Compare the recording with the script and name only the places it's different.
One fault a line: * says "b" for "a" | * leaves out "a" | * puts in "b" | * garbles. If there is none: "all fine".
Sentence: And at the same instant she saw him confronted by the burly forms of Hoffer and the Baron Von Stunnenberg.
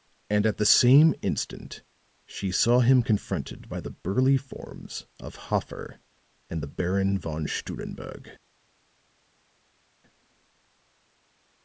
all fine